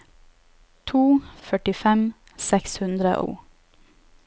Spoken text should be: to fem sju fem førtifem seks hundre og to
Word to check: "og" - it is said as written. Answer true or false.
false